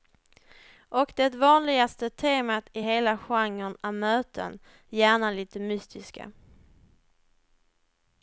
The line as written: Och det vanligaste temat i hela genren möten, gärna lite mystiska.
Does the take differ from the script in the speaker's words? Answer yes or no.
yes